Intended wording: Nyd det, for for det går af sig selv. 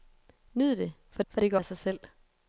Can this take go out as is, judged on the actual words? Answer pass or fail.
pass